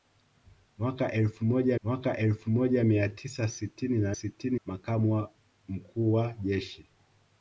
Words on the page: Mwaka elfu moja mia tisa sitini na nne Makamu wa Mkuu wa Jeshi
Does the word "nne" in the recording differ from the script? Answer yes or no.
yes